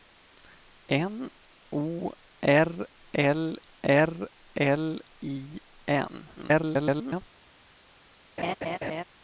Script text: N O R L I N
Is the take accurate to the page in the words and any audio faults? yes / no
no